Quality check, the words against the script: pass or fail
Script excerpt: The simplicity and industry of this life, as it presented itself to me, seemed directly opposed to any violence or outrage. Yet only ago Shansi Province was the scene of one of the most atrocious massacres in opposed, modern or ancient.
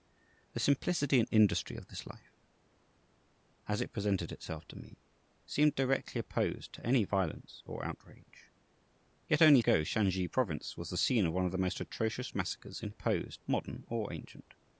pass